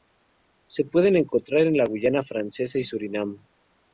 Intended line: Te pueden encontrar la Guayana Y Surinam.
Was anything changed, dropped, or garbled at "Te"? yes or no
yes